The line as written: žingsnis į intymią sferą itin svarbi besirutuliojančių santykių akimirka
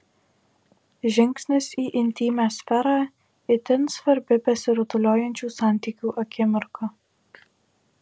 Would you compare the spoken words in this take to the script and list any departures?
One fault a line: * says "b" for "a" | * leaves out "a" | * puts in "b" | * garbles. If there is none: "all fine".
all fine